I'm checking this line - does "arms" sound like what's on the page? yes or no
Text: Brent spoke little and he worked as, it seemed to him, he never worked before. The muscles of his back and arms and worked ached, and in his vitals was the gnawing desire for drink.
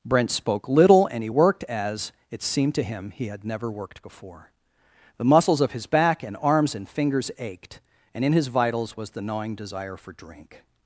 yes